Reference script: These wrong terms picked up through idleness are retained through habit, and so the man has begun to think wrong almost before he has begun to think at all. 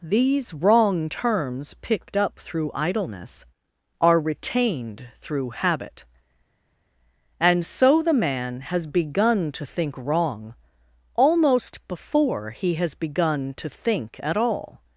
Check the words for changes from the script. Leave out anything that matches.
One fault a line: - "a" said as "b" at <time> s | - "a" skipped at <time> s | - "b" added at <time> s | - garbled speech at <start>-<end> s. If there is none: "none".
none